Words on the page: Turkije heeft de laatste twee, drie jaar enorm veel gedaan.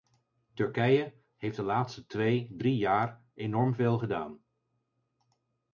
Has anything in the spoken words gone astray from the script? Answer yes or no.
no